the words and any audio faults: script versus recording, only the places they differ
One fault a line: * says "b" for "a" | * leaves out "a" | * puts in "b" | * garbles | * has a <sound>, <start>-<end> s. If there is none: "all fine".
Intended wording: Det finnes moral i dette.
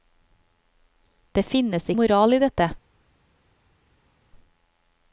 all fine